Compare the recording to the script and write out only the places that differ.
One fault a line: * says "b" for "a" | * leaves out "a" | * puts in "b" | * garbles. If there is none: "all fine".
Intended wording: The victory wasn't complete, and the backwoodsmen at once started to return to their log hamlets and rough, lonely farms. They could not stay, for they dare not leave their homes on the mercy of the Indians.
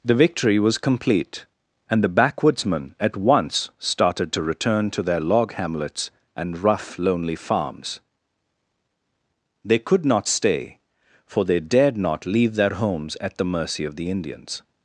* says "was" for "wasn't"
* says "dared" for "dare"
* says "at" for "on"